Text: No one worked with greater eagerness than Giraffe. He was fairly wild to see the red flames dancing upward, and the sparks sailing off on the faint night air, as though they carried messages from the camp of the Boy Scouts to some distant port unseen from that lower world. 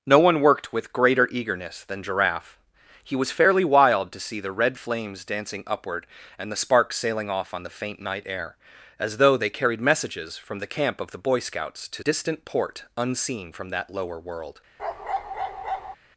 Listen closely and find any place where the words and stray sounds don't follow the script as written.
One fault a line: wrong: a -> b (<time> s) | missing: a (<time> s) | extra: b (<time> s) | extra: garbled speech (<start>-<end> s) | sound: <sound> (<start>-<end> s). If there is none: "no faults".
missing: some (12.0 s)
sound: bark (14.8-16.0 s)